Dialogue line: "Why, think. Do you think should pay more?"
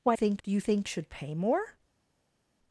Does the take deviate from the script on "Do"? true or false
false